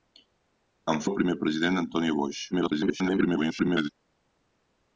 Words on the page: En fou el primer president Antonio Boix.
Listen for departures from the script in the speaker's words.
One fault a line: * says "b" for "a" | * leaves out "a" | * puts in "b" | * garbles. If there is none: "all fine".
* leaves out "fou"
* garbles